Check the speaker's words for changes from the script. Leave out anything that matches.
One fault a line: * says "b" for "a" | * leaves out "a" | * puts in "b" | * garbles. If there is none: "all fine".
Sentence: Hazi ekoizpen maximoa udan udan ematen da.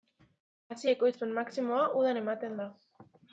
* leaves out "udan"